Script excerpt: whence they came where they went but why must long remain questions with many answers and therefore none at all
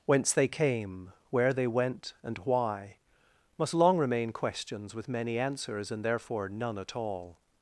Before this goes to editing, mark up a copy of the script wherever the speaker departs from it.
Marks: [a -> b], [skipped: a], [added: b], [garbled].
whence they came where they went [but -> and] why must long remain questions with many answers and therefore none at all